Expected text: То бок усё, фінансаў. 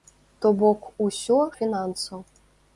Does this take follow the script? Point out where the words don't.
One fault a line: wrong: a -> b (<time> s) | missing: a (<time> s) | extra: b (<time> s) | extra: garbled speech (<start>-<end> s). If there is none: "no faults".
no faults